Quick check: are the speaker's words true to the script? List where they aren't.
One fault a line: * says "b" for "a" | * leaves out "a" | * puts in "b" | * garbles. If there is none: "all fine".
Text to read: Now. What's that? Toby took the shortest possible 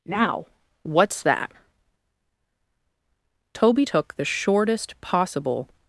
all fine